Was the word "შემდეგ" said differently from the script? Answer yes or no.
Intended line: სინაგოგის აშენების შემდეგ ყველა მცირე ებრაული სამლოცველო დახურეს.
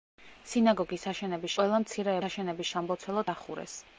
yes